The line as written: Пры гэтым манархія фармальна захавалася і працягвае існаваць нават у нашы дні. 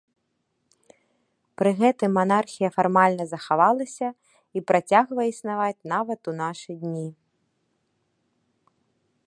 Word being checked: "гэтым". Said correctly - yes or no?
yes